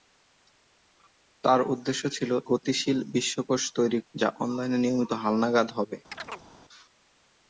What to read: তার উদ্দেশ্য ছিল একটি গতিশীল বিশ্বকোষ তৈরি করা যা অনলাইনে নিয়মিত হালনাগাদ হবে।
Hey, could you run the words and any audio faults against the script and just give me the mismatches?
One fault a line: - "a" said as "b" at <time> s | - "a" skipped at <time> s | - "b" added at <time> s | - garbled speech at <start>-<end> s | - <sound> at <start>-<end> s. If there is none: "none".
- "একটি" skipped at 2.3 s
- "করা" skipped at 4.0 s
- chirp at 6.1-6.5 s